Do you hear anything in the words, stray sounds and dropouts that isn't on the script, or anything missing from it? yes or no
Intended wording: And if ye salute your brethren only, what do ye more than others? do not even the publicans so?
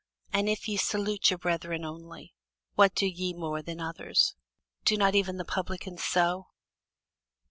no